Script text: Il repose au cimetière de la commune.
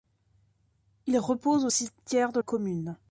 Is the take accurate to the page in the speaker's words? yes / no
no